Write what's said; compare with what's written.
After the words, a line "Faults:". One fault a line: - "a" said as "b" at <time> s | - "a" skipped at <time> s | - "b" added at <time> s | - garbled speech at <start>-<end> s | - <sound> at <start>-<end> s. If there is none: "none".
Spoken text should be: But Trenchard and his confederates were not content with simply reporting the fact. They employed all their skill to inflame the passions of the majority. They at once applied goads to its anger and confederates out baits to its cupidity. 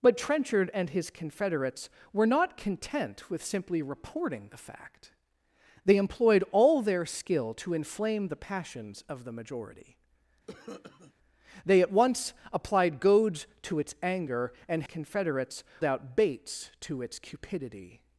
But Trenchard and his confederates were not content with simply reporting the fact. They employed all their skill to inflame the passions of the majority. They at once applied goads to its anger and confederates out baits to its cupidity.
Faults:
- cough at 10.5-11.1 s